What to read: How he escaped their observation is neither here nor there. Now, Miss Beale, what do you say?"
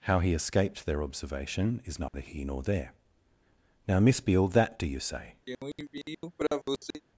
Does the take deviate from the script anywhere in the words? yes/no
yes